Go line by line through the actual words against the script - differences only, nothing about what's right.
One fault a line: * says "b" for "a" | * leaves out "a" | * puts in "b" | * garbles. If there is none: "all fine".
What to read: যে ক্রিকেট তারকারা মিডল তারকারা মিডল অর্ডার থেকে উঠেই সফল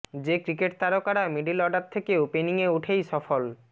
* leaves out "তারকারা মিডল"
* puts in "ওপেনিংয়ে"